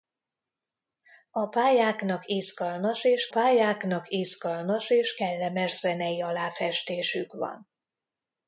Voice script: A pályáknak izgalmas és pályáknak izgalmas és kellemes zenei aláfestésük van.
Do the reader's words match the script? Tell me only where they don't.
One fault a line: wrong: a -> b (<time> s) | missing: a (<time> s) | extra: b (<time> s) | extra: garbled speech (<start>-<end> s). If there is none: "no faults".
no faults